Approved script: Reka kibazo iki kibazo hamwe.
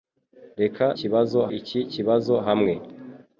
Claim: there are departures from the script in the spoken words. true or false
false